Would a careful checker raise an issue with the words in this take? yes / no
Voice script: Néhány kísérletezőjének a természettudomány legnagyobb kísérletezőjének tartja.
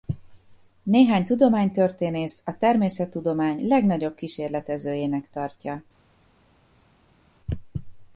yes